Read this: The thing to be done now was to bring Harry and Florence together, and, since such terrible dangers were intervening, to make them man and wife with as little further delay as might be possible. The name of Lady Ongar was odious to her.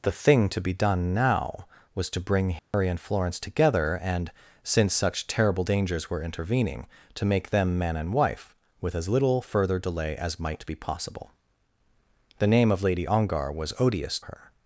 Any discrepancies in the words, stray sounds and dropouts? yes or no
yes